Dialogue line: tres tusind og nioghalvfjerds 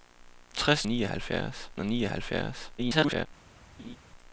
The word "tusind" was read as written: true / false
false